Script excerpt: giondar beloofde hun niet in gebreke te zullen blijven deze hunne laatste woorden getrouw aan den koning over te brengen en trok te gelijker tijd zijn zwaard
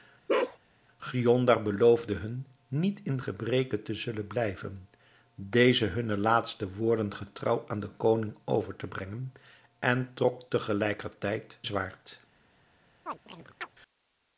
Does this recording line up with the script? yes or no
no